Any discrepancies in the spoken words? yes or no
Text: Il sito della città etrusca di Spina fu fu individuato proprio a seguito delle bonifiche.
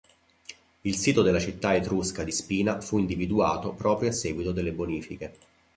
yes